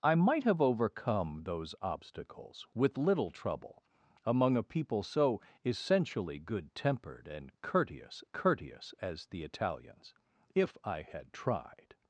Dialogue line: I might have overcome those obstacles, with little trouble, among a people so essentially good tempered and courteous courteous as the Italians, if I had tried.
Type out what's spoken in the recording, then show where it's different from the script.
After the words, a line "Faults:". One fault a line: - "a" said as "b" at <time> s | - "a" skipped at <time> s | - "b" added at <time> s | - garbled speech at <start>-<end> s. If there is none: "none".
I might have overcome those obstacles, with little trouble, among a people so essentially good tempered and courteous courteous as the Italians, if I had tried.
Faults:
none